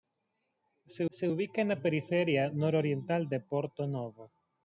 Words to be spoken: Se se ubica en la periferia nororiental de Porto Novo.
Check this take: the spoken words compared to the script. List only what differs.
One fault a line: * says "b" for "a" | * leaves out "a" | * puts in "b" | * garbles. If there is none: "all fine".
all fine